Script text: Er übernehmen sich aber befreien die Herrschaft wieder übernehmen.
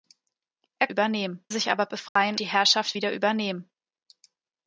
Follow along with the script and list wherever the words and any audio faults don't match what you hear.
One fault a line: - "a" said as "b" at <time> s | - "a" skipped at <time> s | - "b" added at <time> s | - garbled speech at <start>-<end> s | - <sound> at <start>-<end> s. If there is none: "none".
- dropout at 2.1-2.2 s